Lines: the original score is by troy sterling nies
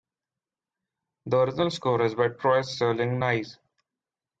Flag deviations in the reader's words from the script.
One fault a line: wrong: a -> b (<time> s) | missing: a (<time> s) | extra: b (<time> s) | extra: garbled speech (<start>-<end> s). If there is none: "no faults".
no faults